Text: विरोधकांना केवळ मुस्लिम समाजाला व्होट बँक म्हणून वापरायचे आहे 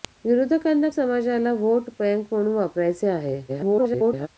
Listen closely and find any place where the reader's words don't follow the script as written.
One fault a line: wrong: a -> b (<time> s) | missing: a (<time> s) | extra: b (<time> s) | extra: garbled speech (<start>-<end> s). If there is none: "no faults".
missing: केवळ मुस्लिम (0.9 s)
extra: garbled speech (3.5-4.3 s)